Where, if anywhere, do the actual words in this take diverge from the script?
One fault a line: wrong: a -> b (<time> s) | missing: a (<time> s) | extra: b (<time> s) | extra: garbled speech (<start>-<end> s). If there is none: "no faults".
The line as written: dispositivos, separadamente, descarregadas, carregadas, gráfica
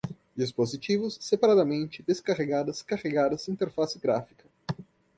extra: interface (3.5 s)